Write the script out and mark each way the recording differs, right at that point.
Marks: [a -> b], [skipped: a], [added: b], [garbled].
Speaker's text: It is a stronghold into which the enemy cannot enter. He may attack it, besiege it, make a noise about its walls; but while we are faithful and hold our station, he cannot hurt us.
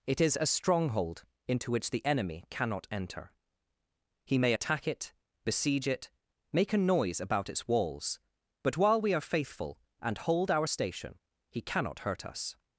It is a stronghold into which the enemy cannot enter. He may attack it, besiege it, make a noise about its walls; but while we are faithful and hold our station, he cannot hurt us.